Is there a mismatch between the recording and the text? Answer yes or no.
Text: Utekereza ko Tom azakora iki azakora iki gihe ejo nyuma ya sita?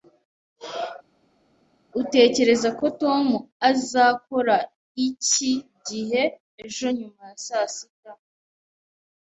yes